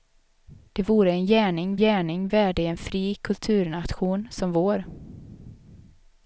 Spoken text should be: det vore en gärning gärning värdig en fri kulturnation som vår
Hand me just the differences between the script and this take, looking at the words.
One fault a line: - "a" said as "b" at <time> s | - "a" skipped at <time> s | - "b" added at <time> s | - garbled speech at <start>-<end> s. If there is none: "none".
none